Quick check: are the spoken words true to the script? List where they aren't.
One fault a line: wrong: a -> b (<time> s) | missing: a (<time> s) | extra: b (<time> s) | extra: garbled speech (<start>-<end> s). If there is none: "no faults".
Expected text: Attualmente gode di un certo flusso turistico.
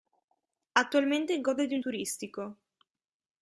missing: certo flusso (1.8 s)